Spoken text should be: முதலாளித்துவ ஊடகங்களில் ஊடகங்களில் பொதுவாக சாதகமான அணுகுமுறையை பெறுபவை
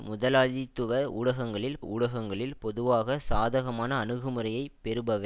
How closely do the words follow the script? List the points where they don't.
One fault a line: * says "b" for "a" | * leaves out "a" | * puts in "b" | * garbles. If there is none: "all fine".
all fine